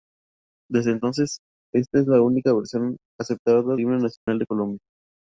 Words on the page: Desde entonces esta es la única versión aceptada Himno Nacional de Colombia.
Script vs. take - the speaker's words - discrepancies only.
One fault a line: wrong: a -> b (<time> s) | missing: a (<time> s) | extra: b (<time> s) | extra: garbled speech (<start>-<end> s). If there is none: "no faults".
no faults